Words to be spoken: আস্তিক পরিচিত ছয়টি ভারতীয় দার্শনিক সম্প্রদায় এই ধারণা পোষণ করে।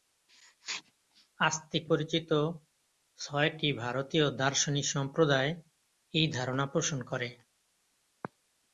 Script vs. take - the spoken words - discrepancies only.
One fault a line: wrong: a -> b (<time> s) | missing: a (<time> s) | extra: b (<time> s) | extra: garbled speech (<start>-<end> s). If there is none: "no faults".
no faults